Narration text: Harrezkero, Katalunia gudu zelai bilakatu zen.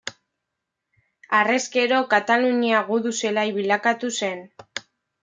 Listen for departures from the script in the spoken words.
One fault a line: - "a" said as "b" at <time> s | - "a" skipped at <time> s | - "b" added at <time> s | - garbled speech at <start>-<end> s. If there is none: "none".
none